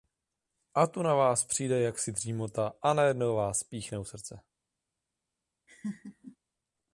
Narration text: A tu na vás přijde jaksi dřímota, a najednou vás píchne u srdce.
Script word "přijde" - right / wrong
right